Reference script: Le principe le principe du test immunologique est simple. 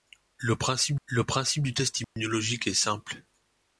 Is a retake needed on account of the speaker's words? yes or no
no